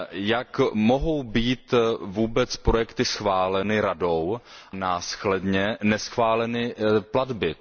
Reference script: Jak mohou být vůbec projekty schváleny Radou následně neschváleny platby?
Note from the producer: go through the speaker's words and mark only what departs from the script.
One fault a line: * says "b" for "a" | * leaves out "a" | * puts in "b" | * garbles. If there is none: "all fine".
all fine